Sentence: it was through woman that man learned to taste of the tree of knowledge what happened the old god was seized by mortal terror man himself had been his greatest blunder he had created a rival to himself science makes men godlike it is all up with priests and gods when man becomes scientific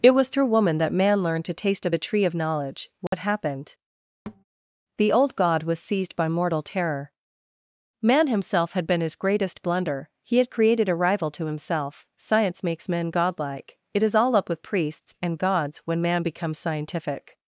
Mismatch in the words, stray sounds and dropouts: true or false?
true